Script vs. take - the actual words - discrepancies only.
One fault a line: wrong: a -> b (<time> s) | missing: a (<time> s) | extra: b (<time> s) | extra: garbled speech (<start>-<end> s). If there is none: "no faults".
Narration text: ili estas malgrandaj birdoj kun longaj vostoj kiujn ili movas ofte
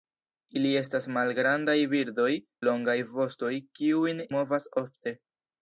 missing: kun (2.3 s)
missing: ili (4.2 s)